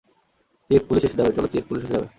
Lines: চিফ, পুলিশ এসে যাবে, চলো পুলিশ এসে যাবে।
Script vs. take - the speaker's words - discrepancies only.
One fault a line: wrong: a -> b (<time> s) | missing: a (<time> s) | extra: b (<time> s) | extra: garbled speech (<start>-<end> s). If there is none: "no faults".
extra: চিফ (1.5 s)